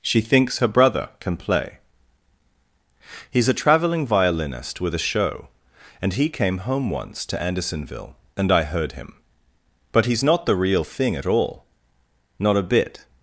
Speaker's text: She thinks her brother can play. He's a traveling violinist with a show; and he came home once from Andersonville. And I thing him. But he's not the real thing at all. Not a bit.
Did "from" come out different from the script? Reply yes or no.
yes